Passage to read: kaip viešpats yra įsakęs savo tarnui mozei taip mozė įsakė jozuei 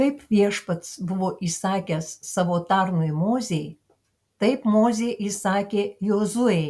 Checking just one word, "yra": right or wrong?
wrong